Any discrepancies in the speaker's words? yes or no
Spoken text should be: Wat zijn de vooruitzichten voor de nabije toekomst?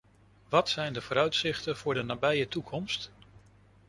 no